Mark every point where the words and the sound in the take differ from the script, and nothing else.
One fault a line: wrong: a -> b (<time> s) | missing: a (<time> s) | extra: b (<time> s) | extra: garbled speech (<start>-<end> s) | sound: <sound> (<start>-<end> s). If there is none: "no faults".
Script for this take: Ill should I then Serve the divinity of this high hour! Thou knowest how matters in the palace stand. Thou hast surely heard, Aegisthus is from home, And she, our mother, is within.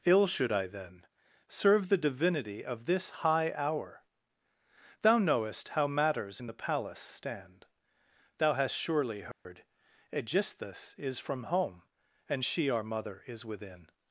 sound: dropout (9.3-9.5 s)